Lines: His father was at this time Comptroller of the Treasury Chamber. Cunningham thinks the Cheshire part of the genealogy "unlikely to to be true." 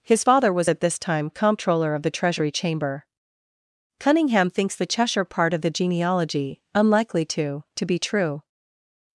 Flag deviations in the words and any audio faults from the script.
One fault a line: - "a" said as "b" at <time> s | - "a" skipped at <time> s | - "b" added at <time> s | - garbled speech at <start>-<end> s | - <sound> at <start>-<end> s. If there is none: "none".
none